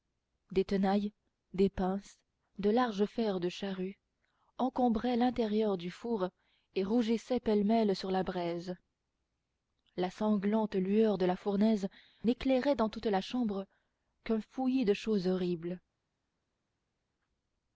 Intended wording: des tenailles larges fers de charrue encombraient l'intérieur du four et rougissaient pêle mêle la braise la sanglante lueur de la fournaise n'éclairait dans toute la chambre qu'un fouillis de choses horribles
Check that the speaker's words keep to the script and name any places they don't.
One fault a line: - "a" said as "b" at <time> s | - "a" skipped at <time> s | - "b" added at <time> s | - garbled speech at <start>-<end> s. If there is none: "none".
- "des pinces de" added at 1.5 s
- "sur" added at 8.0 s